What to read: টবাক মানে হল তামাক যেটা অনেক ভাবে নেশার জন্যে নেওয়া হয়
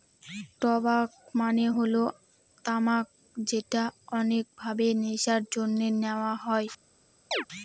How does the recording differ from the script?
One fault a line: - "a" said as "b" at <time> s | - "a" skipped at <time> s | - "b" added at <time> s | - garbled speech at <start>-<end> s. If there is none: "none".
none